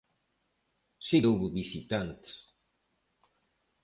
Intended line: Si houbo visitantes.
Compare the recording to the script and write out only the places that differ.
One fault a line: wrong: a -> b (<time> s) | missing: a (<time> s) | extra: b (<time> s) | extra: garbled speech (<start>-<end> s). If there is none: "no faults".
no faults